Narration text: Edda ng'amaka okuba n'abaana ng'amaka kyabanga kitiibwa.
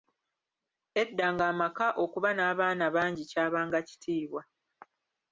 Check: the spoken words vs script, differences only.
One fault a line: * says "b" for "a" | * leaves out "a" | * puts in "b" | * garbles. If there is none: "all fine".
* says "bangi" for "ng'amaka"